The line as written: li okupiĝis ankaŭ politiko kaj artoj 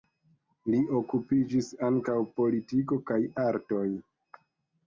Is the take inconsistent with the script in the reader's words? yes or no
no